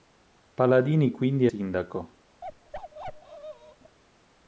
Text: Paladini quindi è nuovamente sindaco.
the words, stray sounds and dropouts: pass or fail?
fail